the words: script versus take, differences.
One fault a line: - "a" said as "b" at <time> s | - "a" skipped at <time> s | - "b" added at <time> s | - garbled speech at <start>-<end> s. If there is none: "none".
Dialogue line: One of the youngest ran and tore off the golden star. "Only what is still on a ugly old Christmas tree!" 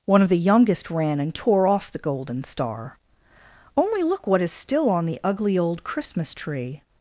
- "look" added at 4.0 s
- "a" said as "the" at 5.1 s